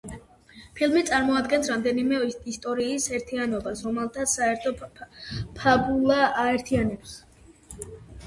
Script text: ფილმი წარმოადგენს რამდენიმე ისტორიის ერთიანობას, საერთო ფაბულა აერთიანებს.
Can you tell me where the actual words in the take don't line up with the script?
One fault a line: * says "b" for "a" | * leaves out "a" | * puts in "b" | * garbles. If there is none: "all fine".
* puts in "რომელთაც"